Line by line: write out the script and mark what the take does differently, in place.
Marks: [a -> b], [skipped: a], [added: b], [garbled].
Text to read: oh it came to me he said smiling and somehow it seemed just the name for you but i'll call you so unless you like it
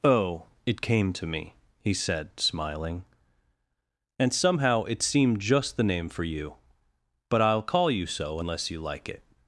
oh it came to me he said smiling and somehow it seemed just the name for you but i'll call you so unless you like it